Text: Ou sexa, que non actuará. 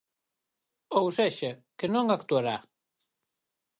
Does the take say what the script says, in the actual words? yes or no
yes